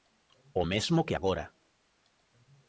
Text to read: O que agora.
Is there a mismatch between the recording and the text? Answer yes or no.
yes